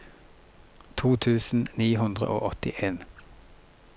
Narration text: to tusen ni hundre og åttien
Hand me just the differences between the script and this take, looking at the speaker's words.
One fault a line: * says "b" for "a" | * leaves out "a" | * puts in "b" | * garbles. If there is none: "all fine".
all fine